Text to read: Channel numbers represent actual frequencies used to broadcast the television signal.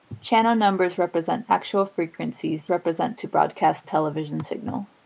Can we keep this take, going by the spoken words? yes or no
no